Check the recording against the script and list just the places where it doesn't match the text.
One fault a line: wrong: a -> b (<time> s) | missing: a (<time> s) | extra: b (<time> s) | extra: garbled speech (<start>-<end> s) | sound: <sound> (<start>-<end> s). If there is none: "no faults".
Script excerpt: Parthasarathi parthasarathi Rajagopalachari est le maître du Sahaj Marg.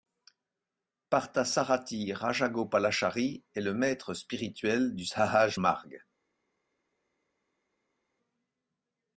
missing: parthasarathi (2.1 s)
extra: spirituel (4.2 s)